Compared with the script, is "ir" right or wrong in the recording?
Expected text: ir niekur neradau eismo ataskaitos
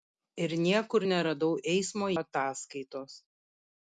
right